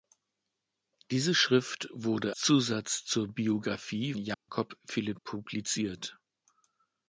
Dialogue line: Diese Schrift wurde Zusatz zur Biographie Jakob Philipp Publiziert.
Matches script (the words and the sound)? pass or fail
fail